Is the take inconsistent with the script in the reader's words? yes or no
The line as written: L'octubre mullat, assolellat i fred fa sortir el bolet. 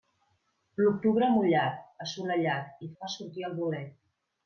yes